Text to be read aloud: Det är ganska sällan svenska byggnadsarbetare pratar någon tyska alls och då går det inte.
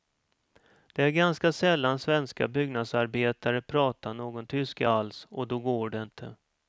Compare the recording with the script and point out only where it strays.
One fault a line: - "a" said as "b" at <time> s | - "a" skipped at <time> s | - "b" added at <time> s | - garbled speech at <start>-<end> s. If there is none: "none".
none